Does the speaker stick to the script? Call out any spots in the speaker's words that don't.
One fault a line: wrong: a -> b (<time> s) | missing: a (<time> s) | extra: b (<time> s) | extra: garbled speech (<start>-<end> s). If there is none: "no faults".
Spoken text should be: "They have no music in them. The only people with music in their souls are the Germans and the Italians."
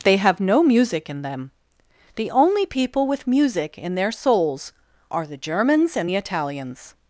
no faults